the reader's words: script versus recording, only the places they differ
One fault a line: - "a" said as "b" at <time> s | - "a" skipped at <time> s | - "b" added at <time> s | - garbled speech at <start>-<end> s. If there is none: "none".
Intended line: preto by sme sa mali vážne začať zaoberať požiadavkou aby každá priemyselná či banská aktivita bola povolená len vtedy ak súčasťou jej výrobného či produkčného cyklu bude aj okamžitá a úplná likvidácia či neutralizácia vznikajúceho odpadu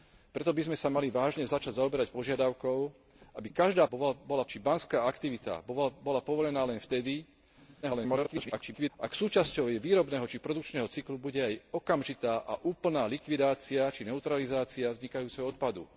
- "priemyselná" said as "bola" at 3.9 s
- garbled speech at 7.8-8.9 s